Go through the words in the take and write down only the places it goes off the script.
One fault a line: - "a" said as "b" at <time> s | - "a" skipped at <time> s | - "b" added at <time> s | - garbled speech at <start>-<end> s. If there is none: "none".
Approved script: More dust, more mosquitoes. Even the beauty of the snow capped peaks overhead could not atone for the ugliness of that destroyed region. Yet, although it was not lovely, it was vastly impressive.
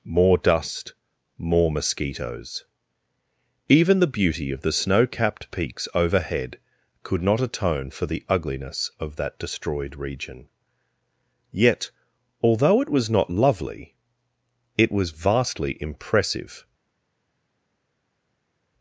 none